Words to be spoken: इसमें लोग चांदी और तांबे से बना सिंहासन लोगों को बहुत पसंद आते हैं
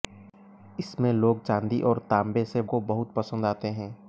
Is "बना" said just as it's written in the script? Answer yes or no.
no